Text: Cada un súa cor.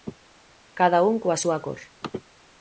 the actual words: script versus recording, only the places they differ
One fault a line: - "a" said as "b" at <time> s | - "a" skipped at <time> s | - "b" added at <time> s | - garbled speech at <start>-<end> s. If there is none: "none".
- "coa" added at 1.2 s